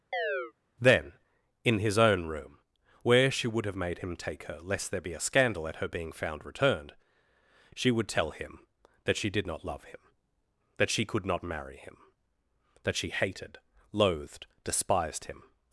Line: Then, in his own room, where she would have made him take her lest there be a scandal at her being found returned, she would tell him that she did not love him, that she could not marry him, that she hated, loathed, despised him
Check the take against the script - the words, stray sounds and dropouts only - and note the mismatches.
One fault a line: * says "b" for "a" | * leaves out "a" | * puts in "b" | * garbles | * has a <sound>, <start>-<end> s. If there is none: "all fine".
* has a chirp, 0.1-0.5 s